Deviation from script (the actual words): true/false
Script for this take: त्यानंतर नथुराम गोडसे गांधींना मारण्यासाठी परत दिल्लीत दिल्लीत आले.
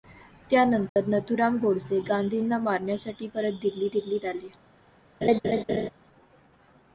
false